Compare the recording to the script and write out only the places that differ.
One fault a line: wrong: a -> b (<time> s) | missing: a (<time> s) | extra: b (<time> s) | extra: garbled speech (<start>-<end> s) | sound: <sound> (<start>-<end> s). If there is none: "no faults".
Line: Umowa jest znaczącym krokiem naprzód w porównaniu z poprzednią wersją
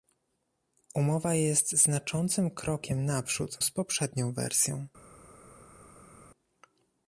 missing: w porównaniu (3.6 s)